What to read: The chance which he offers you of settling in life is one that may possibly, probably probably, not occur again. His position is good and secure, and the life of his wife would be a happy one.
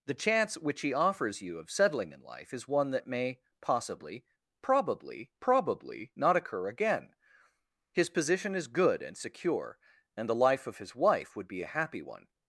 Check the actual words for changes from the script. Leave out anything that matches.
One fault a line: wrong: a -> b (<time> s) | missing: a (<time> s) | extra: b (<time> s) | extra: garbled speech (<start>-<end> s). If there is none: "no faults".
no faults